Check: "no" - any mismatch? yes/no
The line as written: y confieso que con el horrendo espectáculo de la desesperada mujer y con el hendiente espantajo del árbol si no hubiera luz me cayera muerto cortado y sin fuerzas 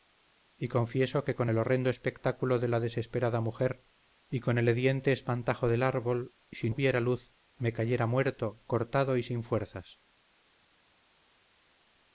yes